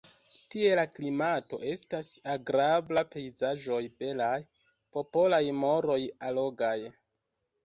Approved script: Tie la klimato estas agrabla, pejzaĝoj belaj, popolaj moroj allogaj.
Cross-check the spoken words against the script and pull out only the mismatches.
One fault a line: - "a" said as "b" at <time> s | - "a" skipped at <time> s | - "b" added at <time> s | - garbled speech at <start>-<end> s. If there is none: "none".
none